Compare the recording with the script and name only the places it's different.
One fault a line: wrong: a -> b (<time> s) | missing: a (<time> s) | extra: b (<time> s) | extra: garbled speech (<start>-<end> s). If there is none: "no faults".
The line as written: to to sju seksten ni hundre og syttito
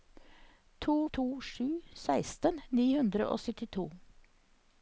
no faults